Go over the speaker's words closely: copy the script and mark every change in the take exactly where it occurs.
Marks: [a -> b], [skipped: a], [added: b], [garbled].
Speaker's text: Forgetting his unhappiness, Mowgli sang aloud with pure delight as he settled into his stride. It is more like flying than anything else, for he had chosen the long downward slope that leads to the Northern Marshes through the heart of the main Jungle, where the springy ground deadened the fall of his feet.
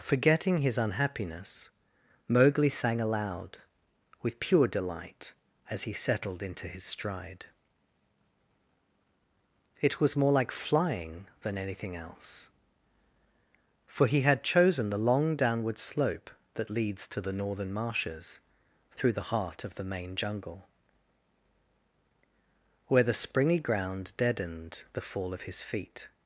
Forgetting his unhappiness, Mowgli sang aloud with pure delight as he settled into his stride. It [is -> was] more like flying than anything else, for he had chosen the long downward slope that leads to the Northern Marshes through the heart of the main Jungle, where the springy ground deadened the fall of his feet.